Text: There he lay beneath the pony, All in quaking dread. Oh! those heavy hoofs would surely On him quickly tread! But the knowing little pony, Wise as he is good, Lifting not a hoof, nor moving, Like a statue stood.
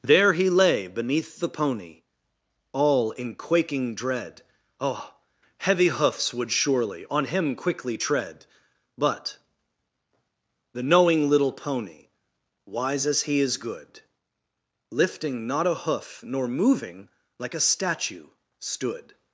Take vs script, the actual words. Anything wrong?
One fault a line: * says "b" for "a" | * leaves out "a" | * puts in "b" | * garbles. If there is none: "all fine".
* leaves out "those"